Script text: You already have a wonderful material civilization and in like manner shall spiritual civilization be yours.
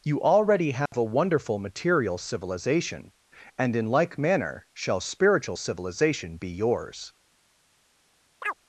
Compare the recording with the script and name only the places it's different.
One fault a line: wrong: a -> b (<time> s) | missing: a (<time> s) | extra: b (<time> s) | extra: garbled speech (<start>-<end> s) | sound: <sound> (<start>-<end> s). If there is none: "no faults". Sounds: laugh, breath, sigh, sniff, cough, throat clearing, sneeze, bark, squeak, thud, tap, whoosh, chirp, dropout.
sound: dropout (0.9-0.9 s)
sound: chirp (8.4-8.5 s)